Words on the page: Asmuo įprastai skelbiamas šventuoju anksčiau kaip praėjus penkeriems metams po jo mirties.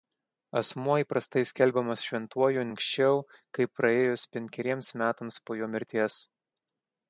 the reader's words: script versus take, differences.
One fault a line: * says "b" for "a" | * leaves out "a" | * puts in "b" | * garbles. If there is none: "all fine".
all fine